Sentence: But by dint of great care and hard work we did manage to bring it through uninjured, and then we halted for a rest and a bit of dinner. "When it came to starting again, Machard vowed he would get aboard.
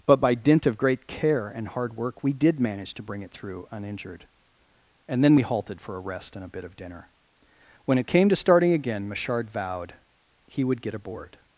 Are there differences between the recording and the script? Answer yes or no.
no